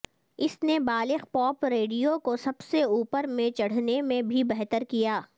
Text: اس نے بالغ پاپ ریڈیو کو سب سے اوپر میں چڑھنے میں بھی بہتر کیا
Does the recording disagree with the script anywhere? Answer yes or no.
no